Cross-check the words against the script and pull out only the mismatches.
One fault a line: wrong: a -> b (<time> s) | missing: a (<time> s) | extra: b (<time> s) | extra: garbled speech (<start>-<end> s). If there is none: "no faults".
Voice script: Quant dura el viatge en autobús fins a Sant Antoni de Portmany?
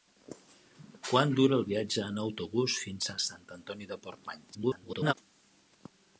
extra: garbled speech (4.5-5.1 s)